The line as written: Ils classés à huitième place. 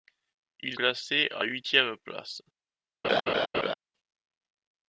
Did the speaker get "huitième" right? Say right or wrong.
right